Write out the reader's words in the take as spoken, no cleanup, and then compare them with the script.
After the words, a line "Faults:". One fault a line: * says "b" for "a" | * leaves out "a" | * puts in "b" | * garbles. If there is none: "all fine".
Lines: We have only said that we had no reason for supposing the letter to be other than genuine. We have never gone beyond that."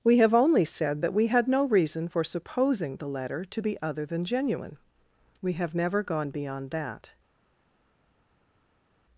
We have only said that we had no reason for supposing the letter to be other than genuine. We have never gone beyond that."
Faults:
all fine